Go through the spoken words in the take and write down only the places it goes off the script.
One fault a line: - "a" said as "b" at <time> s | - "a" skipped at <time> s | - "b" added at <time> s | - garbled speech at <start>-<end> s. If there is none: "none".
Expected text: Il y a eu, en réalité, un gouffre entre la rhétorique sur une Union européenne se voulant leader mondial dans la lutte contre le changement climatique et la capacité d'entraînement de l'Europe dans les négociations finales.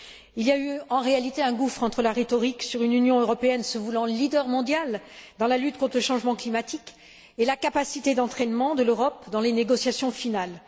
none